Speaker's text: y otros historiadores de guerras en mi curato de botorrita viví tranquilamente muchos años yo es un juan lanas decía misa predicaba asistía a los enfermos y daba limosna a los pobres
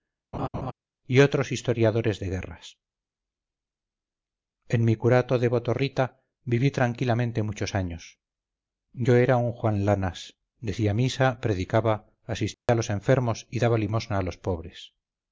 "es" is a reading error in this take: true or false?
true